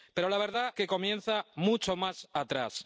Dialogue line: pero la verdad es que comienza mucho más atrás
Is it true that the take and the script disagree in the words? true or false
true